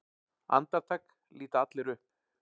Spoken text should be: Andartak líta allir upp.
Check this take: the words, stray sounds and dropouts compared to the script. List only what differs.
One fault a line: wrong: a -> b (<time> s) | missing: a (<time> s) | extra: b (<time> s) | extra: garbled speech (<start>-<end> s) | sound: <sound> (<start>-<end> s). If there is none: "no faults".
no faults